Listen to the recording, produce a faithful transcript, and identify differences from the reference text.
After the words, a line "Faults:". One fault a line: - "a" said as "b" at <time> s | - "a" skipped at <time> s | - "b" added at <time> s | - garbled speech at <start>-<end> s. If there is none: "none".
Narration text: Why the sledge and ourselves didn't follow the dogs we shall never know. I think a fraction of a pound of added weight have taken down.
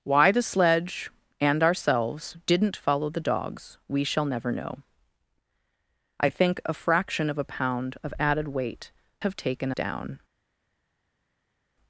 Why the sledge and ourselves didn't follow the dogs we shall never know. I think a fraction of a pound of added weight have taken down.
Faults:
none